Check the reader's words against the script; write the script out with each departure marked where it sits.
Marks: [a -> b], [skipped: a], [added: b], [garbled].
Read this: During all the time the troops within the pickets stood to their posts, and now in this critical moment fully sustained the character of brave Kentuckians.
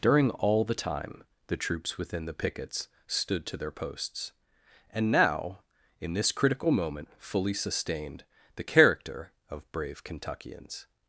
During all the time the troops within the pickets stood to their posts, and now in this critical moment fully sustained the character of brave Kentuckians.